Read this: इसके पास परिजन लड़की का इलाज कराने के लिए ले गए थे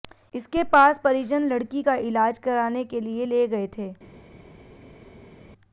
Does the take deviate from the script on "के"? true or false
false